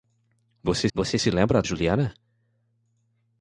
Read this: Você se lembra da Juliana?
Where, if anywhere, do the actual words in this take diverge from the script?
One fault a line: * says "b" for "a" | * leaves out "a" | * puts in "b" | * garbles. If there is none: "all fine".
* puts in "você"
* leaves out "da"